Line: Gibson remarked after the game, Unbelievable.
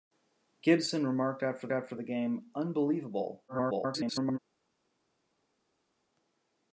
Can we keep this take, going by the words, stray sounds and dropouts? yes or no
no